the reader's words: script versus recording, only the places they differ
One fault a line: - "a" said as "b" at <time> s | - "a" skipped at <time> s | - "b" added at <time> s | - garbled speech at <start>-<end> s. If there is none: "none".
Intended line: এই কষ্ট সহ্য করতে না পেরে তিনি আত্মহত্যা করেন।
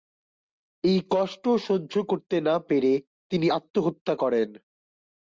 none